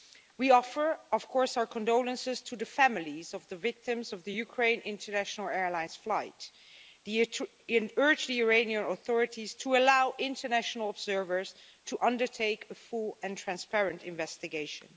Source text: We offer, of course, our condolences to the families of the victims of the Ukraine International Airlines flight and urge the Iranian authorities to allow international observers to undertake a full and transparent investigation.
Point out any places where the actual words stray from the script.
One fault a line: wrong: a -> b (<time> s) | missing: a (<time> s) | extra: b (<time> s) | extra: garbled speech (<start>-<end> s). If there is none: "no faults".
no faults